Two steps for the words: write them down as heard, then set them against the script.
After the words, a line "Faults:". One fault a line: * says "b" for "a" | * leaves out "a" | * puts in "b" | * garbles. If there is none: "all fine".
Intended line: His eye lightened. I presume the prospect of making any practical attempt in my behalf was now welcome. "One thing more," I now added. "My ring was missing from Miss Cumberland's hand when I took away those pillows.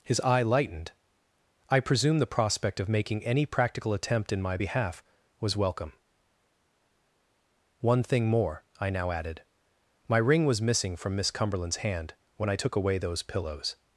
His eye lightened. I presume the prospect of making any practical attempt in my behalf was welcome. "One thing more," I now added. "My ring was missing from Miss Cumberland's hand when I took away those pillows.
Faults:
* leaves out "now"